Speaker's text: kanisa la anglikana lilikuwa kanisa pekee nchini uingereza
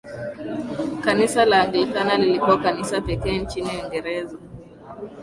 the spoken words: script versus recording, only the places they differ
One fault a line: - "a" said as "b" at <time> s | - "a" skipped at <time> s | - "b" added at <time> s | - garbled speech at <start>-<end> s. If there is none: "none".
none